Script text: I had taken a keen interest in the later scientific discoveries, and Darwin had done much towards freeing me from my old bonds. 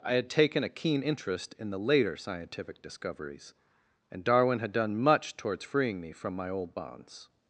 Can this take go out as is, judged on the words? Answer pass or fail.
pass